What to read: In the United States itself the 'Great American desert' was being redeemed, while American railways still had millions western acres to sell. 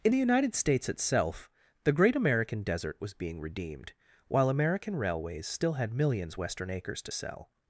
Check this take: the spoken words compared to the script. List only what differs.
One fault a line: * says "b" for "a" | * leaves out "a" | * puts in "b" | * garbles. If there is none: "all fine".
all fine